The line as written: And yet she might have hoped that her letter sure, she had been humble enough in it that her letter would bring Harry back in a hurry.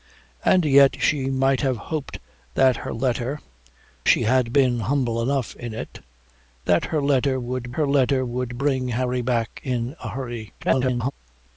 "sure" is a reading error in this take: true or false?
true